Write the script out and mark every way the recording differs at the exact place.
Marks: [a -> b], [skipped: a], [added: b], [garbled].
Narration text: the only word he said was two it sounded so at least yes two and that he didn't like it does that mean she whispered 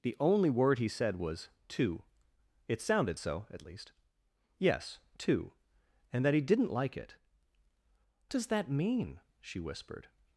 the only word he said was two it sounded so at least yes two and that he didn't like it does that mean she whispered